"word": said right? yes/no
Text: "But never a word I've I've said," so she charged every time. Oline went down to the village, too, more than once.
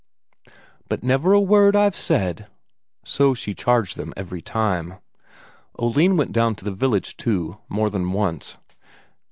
yes